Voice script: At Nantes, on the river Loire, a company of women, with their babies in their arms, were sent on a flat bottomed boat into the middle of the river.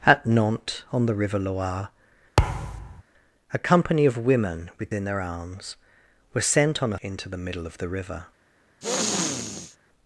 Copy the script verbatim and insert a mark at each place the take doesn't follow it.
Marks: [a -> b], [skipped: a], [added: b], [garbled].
At Nantes, on the river Loire, a company of women, with [skipped: their babies] in their arms, were sent on a [skipped: flat bottomed boat] into the middle of the river.